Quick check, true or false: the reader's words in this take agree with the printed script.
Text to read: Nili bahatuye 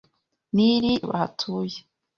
true